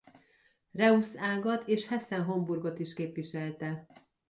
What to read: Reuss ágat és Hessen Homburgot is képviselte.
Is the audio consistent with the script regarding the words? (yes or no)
yes